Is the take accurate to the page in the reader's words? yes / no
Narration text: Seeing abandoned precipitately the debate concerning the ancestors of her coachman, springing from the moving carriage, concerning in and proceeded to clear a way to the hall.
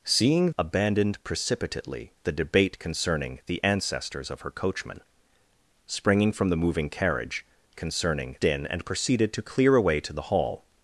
yes